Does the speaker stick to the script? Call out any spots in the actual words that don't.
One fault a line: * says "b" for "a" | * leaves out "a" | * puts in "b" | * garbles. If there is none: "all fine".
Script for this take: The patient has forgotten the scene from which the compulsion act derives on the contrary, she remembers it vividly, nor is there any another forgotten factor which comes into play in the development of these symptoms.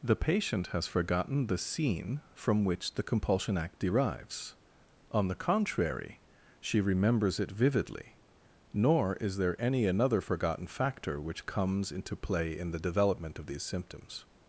all fine